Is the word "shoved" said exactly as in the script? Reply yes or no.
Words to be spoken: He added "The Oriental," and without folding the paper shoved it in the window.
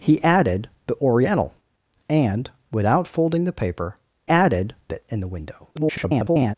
no